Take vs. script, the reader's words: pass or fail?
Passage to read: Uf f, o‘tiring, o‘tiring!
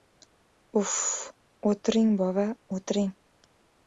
fail